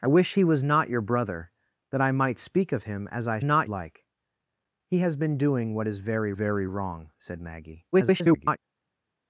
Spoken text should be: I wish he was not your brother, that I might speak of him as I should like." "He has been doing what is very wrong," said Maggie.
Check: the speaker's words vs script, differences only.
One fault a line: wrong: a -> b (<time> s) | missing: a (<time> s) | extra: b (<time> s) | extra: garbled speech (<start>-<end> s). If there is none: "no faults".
wrong: should -> not (3.4 s)
extra: very (6.3 s)
extra: garbled speech (7.9-8.6 s)